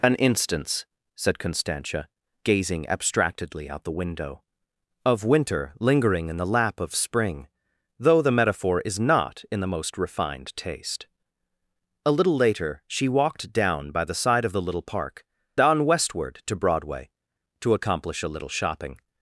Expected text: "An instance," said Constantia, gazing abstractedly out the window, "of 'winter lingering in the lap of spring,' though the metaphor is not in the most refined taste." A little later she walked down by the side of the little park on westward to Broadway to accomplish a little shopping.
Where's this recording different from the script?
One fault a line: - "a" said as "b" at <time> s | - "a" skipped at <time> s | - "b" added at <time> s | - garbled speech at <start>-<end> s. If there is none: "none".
none